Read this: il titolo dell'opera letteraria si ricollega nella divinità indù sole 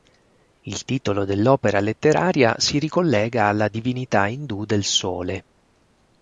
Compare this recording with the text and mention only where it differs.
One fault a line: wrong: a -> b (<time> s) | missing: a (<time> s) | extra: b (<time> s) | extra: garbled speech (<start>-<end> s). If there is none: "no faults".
wrong: nella -> alla (3.5 s)
extra: del (4.7 s)